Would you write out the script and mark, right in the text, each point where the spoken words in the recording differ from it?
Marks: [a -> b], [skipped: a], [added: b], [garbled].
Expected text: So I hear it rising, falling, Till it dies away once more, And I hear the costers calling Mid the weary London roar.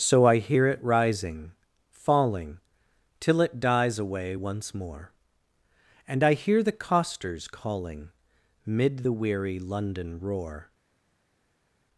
So I hear it rising, falling, Till it dies away once more, And I hear the costers calling Mid the weary London roar.